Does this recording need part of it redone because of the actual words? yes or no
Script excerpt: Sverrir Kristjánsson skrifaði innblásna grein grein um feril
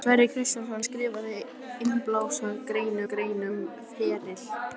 no